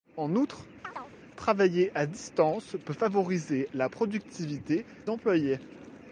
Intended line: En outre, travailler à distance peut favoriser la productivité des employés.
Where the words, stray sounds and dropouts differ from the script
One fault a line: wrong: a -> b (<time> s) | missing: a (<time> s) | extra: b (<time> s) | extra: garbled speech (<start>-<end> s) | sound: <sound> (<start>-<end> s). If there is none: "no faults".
sound: chirp (0.8-1.2 s)
missing: des (4.8 s)